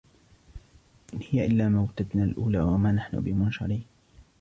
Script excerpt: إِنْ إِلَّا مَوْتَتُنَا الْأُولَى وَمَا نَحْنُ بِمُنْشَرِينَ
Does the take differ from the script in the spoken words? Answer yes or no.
yes